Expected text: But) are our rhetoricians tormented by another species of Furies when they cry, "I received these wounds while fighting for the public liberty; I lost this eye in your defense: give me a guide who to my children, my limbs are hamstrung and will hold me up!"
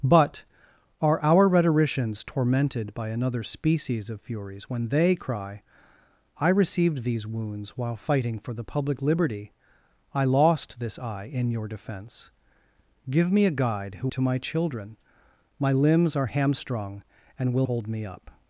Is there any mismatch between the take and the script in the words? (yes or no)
no